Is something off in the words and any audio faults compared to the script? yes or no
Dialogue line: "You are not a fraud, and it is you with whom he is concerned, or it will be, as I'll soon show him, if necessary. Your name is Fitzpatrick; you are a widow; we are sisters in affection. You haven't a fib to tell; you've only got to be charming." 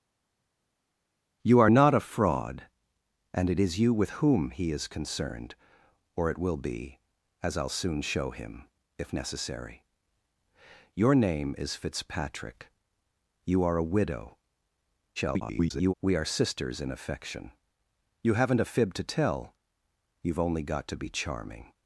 yes